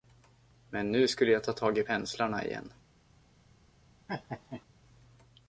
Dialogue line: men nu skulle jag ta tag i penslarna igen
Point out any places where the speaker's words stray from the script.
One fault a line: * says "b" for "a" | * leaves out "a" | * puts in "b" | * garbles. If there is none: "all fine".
all fine